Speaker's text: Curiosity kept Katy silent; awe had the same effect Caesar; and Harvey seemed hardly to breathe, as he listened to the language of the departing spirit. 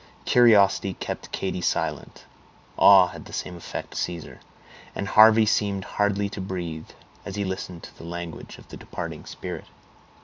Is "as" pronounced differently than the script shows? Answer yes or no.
no